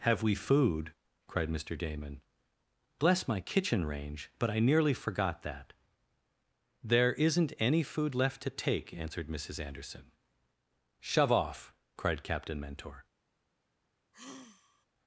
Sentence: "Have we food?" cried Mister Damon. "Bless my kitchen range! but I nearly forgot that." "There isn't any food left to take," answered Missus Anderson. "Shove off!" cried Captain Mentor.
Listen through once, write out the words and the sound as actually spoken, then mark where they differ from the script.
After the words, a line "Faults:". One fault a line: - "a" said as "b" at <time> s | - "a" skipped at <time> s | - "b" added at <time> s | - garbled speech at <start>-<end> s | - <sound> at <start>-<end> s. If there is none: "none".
"Have we food?" cried Mister Damon. "Bless my kitchen range! but I nearly forgot that." "There isn't any food left to take," answered Missus Anderson. "Shove off!" cried Captain Mentor.
Faults:
- sigh at 14.1-14.9 s